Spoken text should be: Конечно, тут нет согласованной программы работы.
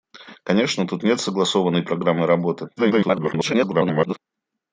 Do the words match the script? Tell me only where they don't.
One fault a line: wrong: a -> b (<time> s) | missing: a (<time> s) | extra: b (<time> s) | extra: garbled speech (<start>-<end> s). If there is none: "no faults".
extra: garbled speech (2.8-4.2 s)